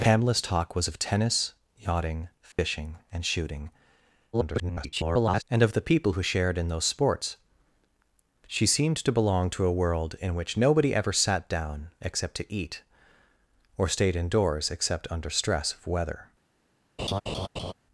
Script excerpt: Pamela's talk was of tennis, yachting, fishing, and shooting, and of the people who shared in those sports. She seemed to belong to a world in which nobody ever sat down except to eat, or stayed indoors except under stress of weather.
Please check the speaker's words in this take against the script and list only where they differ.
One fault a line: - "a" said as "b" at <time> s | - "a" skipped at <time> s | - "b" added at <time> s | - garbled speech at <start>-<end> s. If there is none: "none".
- garbled speech at 4.3-5.4 s